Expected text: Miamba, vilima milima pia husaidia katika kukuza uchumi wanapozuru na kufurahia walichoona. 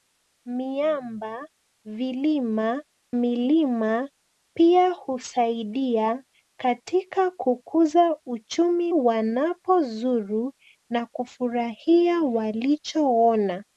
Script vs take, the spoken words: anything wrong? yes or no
no